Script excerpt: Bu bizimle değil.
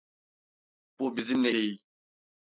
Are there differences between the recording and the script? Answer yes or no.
no